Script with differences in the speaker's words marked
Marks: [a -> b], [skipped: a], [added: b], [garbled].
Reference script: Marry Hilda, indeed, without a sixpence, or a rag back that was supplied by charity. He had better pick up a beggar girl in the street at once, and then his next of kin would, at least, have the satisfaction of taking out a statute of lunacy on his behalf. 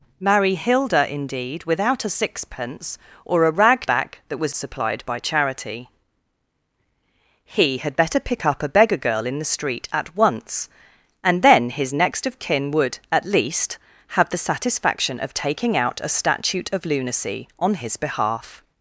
Marry Hilda, indeed, without a sixpence, or a rag back that was supplied by charity. He had better pick up a beggar girl in the street at once, and then his next of kin would, at least, have the satisfaction of taking out a statute of lunacy on his behalf.